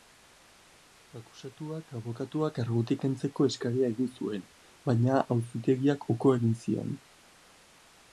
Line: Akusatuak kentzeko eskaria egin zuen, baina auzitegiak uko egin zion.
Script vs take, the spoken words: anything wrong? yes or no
yes